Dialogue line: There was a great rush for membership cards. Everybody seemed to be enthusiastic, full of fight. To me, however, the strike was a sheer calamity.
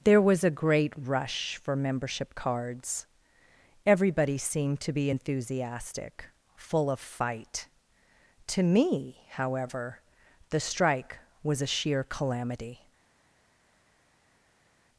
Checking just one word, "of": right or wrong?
right